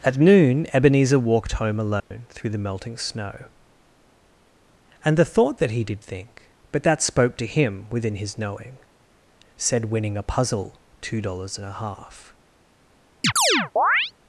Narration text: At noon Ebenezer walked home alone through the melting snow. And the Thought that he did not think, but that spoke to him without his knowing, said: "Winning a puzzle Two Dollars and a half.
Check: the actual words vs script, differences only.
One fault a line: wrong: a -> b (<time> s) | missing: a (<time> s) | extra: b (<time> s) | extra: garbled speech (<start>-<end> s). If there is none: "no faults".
missing: not (6.0 s)
wrong: without -> within (7.9 s)